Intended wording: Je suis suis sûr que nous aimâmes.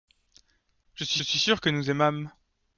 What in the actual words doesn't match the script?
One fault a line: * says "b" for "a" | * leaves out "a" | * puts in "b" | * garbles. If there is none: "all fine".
all fine